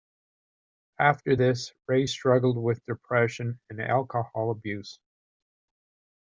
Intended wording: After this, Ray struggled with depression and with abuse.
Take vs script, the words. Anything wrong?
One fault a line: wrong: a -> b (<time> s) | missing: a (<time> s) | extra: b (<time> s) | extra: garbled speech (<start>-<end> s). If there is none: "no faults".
wrong: with -> alcohol (3.8 s)